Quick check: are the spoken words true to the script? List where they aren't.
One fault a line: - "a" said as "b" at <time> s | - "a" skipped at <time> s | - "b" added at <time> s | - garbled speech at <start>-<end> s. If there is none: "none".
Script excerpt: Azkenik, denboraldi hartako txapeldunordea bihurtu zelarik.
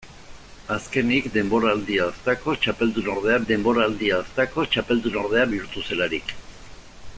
- "denboraldi hartako txapeldunordea" added at 3.5 s